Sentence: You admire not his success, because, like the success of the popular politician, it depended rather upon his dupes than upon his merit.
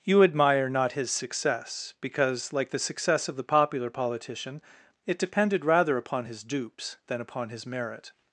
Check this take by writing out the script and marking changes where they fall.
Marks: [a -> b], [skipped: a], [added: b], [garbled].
You admire not his success, because, like the success of the popular politician, it depended rather upon his dupes than upon his merit.